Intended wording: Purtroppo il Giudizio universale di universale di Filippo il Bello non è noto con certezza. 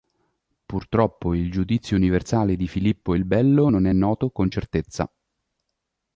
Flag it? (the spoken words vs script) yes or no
yes